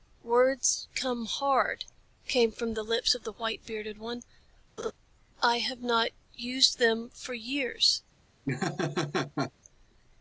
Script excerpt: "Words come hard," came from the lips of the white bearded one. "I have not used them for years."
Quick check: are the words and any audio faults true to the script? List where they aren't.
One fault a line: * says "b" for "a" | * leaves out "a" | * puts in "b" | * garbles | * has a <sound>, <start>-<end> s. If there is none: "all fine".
* has a laugh, 4.8-4.9 s
* has a laugh, 8.5-9.5 s